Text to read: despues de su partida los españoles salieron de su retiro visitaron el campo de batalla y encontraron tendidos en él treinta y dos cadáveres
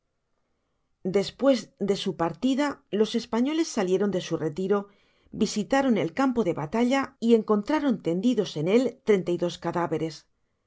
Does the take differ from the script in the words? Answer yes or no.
no